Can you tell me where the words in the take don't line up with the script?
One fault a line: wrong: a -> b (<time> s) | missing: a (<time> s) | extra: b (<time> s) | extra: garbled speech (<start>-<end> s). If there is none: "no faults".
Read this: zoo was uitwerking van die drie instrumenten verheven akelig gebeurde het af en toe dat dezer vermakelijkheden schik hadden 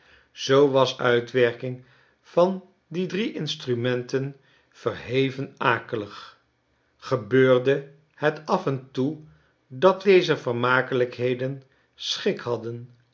no faults